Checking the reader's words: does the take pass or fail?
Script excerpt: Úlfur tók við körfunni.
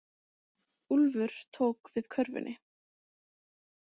pass